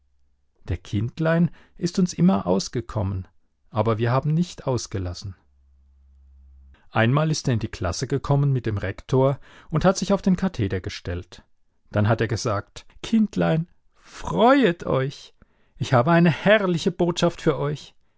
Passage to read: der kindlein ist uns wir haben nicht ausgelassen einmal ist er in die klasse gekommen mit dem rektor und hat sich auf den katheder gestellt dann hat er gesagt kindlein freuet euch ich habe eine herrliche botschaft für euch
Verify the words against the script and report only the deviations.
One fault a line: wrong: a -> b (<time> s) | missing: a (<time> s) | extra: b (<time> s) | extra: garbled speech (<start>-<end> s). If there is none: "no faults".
extra: immer ausgekommen aber (2.1 s)